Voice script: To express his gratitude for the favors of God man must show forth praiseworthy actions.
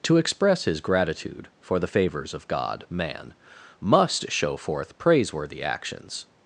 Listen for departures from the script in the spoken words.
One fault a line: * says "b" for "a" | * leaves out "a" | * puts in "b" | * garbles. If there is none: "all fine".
all fine